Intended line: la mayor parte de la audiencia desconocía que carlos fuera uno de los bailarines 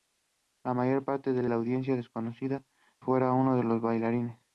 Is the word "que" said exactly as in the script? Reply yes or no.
no